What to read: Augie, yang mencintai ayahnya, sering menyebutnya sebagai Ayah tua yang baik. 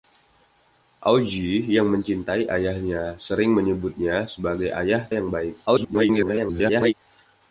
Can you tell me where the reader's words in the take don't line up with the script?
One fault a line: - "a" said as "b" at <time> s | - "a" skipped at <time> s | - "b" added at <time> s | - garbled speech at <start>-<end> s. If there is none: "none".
- "tua" skipped at 5.0 s
- garbled speech at 5.7-6.9 s